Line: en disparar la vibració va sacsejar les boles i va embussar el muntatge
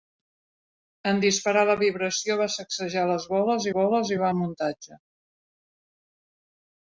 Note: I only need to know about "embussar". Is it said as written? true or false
false